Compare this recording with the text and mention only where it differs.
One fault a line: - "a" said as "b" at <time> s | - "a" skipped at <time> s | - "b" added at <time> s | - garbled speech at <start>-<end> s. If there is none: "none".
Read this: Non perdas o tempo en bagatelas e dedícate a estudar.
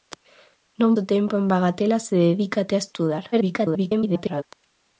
- "perdas" skipped at 0.9 s
- garbled speech at 3.3-4.4 s